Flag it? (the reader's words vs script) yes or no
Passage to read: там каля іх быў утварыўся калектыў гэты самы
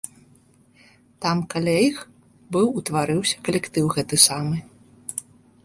no